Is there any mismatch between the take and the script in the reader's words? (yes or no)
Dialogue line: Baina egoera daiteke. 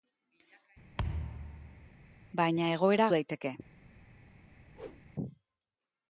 no